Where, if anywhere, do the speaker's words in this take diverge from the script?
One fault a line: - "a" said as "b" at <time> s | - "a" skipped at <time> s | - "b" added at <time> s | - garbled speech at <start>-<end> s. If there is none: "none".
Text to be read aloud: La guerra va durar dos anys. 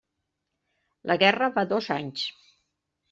- "durar" skipped at 1.7 s